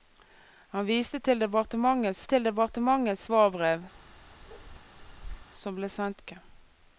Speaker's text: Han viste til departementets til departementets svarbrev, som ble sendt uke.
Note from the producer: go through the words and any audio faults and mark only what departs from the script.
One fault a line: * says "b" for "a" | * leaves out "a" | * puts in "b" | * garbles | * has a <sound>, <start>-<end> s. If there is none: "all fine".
* has a bark, 3.9-5.5 s